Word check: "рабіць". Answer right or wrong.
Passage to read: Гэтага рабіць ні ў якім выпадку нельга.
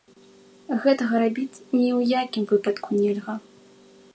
right